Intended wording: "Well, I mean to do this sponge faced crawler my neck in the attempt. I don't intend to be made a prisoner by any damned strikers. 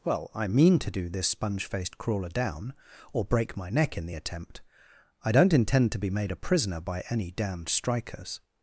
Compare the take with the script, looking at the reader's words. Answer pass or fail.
fail